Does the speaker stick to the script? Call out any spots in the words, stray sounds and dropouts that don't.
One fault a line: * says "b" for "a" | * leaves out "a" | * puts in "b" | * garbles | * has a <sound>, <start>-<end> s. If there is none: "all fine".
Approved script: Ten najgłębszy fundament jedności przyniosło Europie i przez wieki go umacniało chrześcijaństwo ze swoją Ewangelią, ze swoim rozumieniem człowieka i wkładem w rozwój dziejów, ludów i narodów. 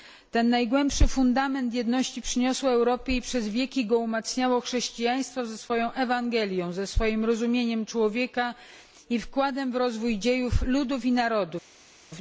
all fine